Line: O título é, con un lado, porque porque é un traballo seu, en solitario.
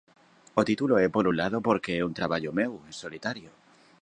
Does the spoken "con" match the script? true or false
false